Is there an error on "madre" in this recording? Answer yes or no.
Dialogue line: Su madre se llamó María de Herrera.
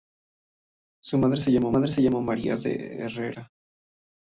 no